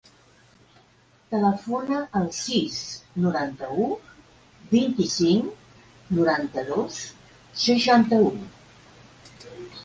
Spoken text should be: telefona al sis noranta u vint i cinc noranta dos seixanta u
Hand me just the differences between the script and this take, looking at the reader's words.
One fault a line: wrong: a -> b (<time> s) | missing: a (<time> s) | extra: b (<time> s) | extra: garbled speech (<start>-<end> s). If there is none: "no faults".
no faults